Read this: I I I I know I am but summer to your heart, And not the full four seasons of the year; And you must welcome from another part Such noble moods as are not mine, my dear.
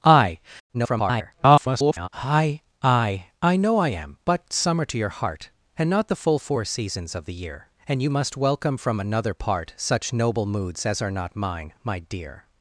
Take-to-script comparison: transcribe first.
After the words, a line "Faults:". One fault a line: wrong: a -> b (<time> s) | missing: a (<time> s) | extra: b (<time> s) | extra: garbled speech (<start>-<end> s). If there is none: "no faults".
I [garbled] I I I know I am but summer to your heart, And not the full four seasons of the year; And you must welcome from another part Such noble moods as are not mine, my dear.
Faults:
extra: garbled speech (0.7-2.1 s)